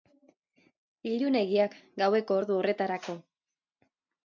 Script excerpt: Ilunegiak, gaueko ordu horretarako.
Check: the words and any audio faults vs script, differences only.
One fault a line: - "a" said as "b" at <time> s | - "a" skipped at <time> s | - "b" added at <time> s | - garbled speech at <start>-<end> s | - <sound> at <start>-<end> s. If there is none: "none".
none